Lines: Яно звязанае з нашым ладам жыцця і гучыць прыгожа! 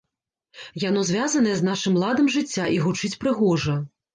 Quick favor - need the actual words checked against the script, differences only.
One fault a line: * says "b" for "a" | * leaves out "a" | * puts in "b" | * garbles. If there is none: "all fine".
all fine